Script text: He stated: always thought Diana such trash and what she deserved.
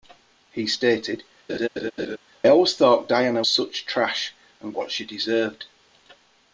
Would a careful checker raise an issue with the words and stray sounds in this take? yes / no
yes